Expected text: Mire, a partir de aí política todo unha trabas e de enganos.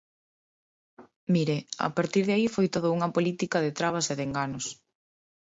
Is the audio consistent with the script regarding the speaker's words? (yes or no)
no